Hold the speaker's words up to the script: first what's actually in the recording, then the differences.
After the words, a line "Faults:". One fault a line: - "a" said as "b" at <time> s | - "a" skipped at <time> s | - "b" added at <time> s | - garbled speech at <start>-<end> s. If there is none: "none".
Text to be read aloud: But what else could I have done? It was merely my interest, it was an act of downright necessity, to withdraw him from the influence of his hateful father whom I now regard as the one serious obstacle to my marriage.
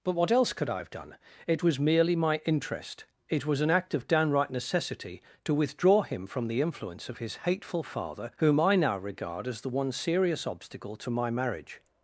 But what else could I have done? It was merely my interest, it was an act of downright necessity, to withdraw him from the influence of his hateful father whom I now regard as the one serious obstacle to my marriage.
Faults:
none